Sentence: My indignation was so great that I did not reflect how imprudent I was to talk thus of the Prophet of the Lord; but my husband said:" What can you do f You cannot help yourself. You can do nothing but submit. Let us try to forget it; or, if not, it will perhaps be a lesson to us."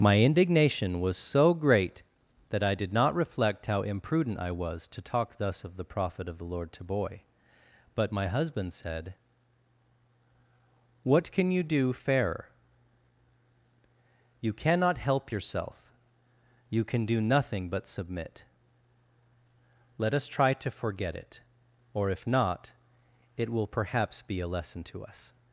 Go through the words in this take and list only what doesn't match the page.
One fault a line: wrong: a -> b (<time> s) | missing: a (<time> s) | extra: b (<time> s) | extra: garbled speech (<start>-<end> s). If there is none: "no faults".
extra: to boy (6.7 s)
wrong: f -> fairer (11.9 s)